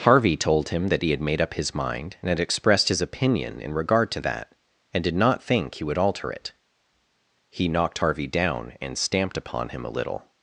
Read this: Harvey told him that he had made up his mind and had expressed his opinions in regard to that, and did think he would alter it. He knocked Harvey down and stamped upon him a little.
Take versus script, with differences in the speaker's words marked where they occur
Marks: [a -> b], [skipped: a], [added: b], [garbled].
Harvey told him that he had made up his mind and had expressed his [opinions -> opinion] in regard to that, and did [added: not] think he would alter it. He knocked Harvey down and stamped upon him a little.